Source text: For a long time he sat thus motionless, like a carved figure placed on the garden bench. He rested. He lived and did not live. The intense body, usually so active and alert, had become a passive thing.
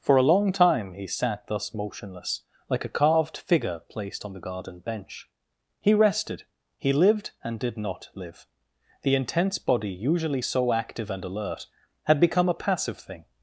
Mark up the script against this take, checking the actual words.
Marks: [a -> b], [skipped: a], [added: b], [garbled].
For a long time he sat thus motionless, like a carved figure placed on the garden bench. He rested. He lived and did not live. The intense body, usually so active and alert, had become a passive thing.